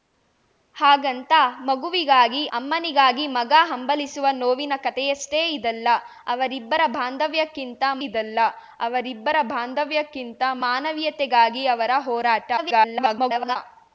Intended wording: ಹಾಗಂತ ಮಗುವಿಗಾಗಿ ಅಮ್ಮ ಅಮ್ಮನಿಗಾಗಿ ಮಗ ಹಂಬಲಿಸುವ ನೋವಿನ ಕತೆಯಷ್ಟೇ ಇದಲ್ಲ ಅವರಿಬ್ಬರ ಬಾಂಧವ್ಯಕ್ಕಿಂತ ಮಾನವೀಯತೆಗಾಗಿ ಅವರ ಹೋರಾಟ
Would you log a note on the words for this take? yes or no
yes